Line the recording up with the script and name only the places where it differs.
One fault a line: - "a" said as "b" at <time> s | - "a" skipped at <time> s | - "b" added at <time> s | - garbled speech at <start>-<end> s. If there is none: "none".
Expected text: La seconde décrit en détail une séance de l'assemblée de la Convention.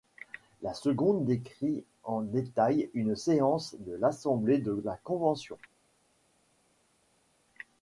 none